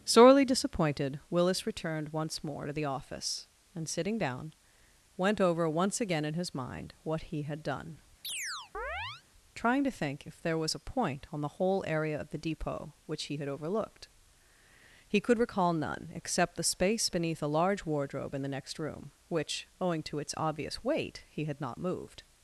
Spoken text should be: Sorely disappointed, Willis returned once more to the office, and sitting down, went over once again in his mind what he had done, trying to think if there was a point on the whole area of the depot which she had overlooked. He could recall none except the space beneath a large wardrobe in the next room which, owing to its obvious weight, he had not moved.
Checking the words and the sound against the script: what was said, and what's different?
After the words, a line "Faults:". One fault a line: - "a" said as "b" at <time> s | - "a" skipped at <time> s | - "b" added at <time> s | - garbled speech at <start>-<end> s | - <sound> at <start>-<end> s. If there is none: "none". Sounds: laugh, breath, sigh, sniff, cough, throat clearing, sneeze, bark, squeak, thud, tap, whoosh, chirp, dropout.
Sorely disappointed, Willis returned once more to the office, and sitting down, went over once again in his mind what he had done, trying to think if there was a point on the whole area of the depot which he had overlooked. He could recall none except the space beneath a large wardrobe in the next room which, owing to its obvious weight, he had not moved.
Faults:
- chirp at 8.2-9.2 s
- "she" said as "he" at 13.2 s